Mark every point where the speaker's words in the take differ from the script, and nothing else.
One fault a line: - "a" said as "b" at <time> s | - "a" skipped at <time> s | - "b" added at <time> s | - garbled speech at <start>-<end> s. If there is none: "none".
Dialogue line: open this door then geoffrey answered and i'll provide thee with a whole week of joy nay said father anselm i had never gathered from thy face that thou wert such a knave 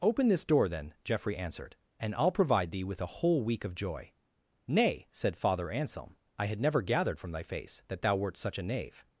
none